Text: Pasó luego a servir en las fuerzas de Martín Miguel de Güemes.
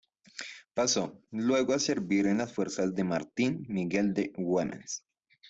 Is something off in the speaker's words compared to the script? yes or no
no